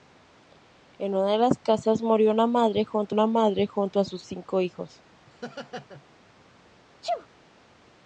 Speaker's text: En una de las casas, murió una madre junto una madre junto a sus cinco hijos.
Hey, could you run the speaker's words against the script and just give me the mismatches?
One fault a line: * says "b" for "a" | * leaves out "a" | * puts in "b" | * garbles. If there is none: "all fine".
all fine